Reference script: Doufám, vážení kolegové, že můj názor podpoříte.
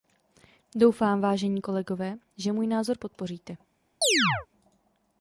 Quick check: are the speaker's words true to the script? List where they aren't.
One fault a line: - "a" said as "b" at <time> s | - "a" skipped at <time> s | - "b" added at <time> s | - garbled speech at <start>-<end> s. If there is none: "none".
none